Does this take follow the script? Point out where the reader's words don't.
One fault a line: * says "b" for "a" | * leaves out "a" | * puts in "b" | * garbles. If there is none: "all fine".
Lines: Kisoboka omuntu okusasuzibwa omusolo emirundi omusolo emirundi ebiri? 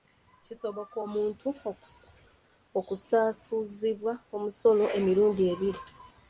* leaves out "omusolo emirundi"